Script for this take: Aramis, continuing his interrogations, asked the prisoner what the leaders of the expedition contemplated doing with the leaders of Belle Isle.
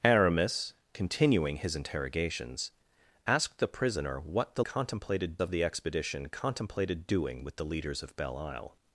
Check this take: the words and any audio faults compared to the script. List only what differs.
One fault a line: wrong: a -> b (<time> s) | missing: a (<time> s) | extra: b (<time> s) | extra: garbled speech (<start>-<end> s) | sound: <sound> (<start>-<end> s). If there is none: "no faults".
wrong: leaders -> contemplated (4.6 s)